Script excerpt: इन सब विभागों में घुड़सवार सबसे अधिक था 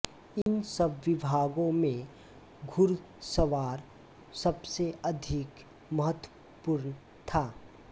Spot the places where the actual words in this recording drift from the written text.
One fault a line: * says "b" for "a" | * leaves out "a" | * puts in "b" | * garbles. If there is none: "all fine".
* puts in "महत्वपूर्ण"